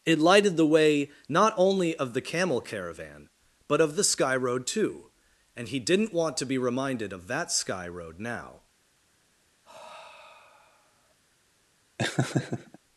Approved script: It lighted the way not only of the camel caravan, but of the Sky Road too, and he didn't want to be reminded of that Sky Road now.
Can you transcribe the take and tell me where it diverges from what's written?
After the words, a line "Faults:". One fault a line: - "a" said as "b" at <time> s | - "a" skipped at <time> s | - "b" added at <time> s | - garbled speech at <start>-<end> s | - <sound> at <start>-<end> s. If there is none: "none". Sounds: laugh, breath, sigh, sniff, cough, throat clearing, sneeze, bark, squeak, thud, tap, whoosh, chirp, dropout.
It lighted the way not only of the camel caravan, but of the Sky Road too, and he didn't want to be reminded of that Sky Road now.
Faults:
- sigh at 9.6-11.1 s
- laugh at 12.0-12.8 s